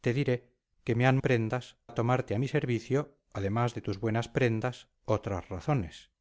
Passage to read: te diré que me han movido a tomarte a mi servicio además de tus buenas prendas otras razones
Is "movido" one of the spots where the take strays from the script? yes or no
yes